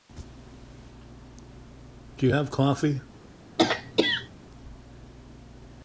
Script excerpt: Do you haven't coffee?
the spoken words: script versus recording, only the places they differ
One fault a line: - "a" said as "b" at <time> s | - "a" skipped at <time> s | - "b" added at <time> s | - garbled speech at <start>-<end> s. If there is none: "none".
- "haven't" said as "have" at 2.3 s